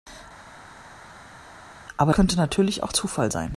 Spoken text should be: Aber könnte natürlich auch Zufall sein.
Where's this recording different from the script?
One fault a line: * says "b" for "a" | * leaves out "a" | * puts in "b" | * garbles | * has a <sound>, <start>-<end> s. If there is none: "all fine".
all fine